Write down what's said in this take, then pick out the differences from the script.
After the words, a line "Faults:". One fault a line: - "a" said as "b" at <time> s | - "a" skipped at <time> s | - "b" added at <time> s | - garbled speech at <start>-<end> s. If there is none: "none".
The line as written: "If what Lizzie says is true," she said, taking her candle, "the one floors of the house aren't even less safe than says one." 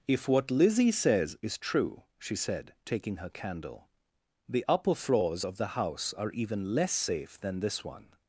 "If what Lizzie says is true," she said, taking her candle, "the upper floors of the house are even less safe than this one."
Faults:
- "one" said as "upper" at 4.7 s
- "aren't" said as "are" at 6.1 s
- "says" said as "this" at 7.6 s